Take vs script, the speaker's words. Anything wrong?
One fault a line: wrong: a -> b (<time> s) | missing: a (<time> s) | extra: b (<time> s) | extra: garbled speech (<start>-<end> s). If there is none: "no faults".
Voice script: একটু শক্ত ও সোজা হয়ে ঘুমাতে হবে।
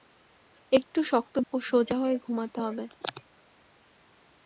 no faults